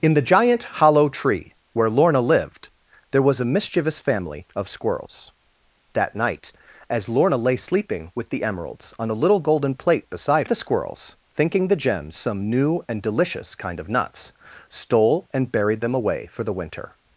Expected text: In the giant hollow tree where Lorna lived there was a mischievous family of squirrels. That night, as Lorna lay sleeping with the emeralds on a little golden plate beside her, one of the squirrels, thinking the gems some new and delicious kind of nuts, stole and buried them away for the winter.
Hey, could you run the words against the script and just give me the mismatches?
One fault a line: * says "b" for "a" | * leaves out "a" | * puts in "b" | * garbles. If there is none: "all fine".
* leaves out "her one of"